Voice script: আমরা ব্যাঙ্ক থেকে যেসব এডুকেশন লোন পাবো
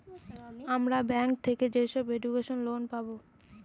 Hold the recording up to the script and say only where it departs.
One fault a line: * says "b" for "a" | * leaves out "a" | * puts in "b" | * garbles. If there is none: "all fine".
all fine